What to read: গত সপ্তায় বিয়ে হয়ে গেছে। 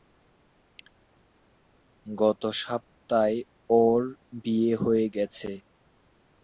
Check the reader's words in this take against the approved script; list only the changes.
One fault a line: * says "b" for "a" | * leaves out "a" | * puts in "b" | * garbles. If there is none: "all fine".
* puts in "ওর"